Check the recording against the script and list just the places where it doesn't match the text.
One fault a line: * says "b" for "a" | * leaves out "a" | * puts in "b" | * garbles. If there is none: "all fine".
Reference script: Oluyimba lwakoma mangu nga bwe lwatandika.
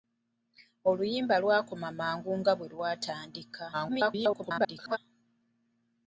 * garbles